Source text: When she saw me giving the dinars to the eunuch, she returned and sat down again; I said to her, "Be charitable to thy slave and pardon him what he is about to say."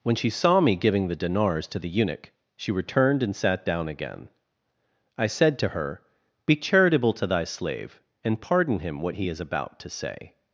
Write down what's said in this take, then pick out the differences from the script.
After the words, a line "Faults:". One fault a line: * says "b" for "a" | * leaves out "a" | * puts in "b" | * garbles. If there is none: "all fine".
When she saw me giving the dinars to the eunuch, she returned and sat down again; I said to her, "Be charitable to thy slave and pardon him what he is about to say."
Faults:
all fine